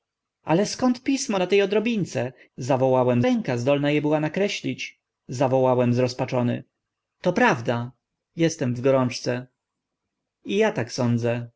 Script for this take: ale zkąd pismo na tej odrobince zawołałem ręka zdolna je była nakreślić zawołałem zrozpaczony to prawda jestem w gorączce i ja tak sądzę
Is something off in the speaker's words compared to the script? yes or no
no